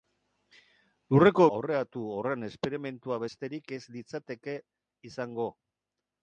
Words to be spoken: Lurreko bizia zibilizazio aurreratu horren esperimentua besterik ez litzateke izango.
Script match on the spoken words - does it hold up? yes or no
no